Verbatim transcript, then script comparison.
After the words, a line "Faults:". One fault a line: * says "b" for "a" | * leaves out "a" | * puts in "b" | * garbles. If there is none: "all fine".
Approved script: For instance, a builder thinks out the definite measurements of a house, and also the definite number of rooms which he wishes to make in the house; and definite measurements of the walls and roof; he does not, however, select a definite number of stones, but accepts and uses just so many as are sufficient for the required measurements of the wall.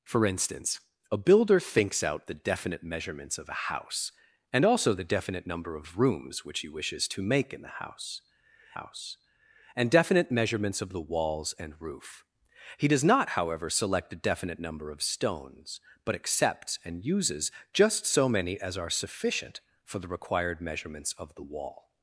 For instance, a builder thinks out the definite measurements of a house, and also the definite number of rooms which he wishes to make in the house house; and definite measurements of the walls and roof; he does not, however, select a definite number of stones, but accepts and uses just so many as are sufficient for the required measurements of the wall.
Faults:
* puts in "house"